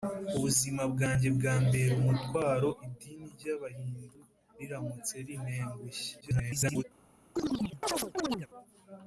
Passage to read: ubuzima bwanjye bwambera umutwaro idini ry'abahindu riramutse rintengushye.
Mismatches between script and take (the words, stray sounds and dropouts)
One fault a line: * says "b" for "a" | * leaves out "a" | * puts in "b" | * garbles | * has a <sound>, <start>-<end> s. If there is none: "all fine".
* garbles
* has a chirp, 7.4-8.5 s